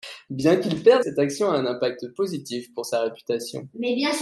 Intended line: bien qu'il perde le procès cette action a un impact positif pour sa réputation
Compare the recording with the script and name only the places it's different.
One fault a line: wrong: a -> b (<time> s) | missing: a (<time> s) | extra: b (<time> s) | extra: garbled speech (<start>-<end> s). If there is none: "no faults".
missing: le procès (1.1 s)